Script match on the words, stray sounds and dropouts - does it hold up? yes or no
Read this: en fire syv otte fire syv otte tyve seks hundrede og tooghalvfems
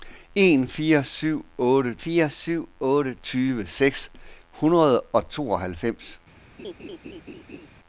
no